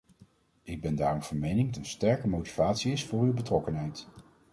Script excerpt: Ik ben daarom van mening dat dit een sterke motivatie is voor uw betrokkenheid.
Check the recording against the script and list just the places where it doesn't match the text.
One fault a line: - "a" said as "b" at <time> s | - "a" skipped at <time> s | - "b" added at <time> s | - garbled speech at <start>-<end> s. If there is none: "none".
- "dat dit" skipped at 1.7 s